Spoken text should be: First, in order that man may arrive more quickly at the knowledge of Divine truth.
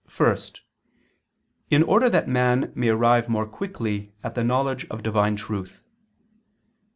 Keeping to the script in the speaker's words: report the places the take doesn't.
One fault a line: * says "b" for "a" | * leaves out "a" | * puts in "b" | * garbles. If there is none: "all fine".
all fine